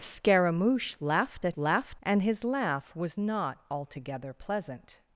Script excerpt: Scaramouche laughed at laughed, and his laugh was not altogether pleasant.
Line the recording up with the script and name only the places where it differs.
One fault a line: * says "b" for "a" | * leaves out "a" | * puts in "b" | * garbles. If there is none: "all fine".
all fine